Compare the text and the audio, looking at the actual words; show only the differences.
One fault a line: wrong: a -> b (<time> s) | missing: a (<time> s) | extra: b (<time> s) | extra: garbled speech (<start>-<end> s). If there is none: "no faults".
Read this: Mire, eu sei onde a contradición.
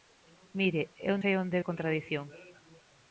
no faults